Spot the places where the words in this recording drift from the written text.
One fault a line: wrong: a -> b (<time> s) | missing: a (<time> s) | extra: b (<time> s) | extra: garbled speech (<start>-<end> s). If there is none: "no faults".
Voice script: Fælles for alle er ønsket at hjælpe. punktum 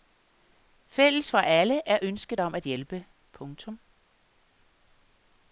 extra: om (2.4 s)